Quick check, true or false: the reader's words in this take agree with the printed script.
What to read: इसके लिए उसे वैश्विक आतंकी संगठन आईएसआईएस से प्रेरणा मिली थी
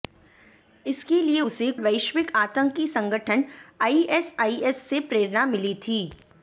true